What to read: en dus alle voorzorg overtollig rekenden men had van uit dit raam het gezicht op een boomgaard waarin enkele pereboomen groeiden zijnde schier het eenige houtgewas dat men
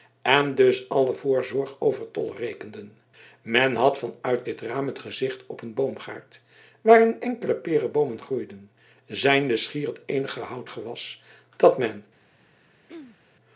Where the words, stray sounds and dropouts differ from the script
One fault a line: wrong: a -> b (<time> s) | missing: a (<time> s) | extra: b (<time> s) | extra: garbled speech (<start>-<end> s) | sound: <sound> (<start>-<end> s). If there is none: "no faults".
sound: throat clearing (12.9-13.2 s)